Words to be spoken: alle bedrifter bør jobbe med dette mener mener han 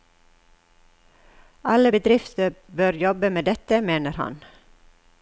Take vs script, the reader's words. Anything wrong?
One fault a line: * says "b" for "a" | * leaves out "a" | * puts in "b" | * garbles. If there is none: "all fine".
* leaves out "mener"